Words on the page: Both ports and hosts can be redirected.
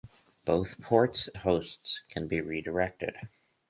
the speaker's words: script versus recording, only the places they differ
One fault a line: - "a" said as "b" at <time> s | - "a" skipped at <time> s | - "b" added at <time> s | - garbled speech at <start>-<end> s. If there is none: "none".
- "and" skipped at 1.3 s